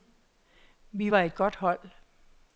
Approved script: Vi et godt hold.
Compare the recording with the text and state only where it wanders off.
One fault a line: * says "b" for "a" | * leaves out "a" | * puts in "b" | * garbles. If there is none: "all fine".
* puts in "var"